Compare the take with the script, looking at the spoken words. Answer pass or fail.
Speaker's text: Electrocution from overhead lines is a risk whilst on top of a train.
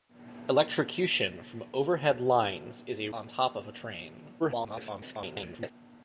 fail